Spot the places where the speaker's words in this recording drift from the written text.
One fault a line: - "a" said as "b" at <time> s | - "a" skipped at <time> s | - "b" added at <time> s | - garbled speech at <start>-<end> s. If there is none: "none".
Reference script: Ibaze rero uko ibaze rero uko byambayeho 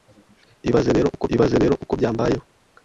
none